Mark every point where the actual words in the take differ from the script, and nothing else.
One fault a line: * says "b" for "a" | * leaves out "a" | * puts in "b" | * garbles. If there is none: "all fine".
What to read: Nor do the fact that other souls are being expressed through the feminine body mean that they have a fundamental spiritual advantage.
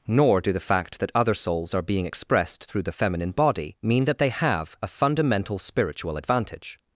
all fine